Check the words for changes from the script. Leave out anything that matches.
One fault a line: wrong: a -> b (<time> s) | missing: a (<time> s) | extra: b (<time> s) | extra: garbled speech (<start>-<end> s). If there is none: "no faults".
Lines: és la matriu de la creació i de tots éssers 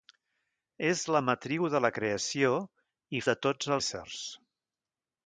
no faults